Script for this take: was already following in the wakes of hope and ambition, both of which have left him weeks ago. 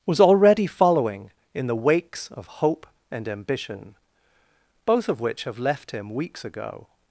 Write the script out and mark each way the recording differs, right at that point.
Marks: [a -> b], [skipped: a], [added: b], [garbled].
was already following in the wakes of hope and ambition, both of which have left him weeks ago.